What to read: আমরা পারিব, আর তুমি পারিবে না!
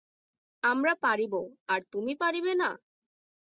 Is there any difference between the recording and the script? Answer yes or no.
no